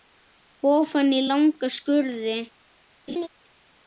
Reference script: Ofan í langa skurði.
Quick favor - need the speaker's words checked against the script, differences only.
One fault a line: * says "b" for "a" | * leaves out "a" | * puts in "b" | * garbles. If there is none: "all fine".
all fine